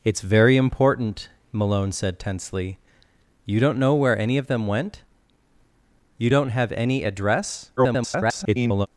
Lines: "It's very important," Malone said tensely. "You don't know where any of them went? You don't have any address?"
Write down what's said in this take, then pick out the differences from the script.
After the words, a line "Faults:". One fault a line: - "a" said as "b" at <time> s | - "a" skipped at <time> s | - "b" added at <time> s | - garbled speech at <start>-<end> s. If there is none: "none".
"It's very important," Malone said tensely. "You don't know where any of them went? You don't have any address?" [garbled]
Faults:
- garbled speech at 7.8-8.9 s